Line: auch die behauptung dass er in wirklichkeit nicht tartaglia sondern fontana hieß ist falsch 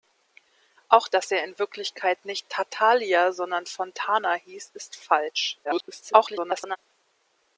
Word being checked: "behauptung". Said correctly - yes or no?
no